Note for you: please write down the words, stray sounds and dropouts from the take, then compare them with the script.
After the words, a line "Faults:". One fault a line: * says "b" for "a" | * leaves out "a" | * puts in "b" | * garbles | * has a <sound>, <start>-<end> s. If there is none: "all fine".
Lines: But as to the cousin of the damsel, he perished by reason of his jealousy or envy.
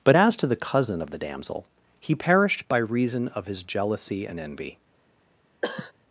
But as to the cousin of the damsel, he perished by reason of his jealousy and envy.
Faults:
* says "and" for "or"
* has a cough, 5.6-5.9 s